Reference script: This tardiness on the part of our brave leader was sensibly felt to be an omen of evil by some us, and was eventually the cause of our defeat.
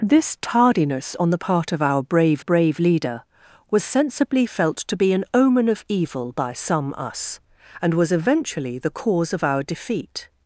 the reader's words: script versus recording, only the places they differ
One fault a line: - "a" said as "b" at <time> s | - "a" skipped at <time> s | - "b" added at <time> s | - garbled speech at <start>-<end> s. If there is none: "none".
- "brave" added at 2.4 s